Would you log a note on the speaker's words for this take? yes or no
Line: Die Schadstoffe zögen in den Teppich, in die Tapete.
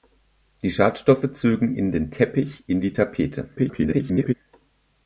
yes